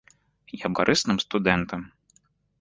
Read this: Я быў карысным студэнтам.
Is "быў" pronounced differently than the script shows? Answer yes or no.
yes